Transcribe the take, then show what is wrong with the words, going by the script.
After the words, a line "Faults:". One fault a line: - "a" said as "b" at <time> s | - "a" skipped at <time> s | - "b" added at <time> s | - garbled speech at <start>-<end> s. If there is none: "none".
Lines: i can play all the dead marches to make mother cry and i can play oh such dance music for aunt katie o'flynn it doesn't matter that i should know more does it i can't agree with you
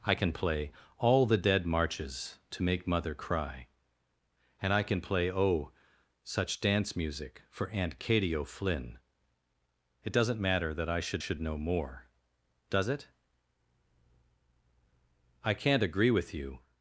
i can play all the dead marches to make mother cry and i can play oh such dance music for aunt katie o'flynn it doesn't matter that i should should know more does it i can't agree with you
Faults:
- "should" added at 11.2 s